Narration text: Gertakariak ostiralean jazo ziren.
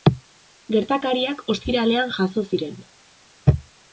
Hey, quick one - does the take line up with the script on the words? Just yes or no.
yes